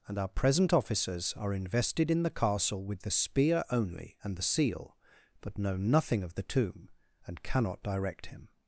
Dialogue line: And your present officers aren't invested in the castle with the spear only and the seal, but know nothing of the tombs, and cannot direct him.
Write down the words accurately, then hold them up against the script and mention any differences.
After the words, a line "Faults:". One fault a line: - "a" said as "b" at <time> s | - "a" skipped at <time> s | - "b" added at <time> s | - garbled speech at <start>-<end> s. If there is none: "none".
And our present officers are invested in the castle with the spear only and the seal, but know nothing of the tomb, and cannot direct him.
Faults:
- "your" said as "our" at 0.2 s
- "aren't" said as "are" at 1.4 s
- "tombs" said as "tomb" at 6.4 s